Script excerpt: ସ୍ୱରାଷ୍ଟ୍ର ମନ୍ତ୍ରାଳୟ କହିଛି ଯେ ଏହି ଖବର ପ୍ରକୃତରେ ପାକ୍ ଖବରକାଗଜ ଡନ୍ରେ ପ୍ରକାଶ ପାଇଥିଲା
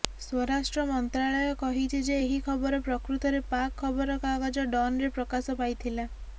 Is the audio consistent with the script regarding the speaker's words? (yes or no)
yes